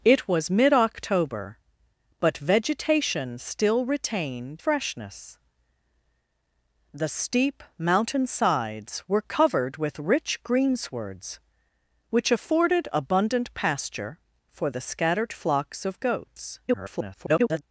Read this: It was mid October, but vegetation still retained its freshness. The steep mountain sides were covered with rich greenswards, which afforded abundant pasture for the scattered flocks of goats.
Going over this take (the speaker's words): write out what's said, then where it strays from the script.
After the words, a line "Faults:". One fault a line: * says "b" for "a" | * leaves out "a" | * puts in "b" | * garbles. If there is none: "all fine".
It was mid October, but vegetation still retained freshness. The steep mountain sides were covered with rich greenswards, which afforded abundant pasture for the scattered flocks of goats. [garbled]
Faults:
* leaves out "its"
* garbles